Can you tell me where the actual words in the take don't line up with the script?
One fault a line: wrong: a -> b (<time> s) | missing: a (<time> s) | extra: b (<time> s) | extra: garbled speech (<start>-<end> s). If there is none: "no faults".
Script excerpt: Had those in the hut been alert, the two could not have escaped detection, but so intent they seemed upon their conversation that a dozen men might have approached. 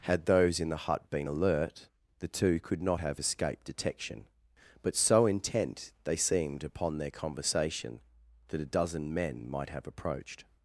no faults